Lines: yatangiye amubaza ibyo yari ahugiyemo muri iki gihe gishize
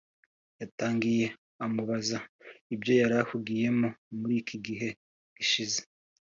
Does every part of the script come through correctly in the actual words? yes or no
yes